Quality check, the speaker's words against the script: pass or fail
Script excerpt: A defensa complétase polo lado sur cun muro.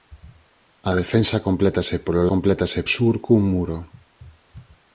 fail